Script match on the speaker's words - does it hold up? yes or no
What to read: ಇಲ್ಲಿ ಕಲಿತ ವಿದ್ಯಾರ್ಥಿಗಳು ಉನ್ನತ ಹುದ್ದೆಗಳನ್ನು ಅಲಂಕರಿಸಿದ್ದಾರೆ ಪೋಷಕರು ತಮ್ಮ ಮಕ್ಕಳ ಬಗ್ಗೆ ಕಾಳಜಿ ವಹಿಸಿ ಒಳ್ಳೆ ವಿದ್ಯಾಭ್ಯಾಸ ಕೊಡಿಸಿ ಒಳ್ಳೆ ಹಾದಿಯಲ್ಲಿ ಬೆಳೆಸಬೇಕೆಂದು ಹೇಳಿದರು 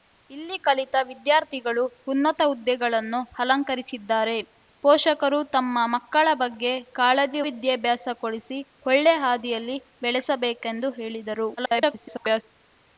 no